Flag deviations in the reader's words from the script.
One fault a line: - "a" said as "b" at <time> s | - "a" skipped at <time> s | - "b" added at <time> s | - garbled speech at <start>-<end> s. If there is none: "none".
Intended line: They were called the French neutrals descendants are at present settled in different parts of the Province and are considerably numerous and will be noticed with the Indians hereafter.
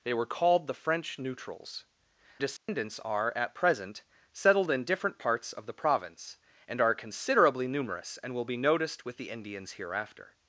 none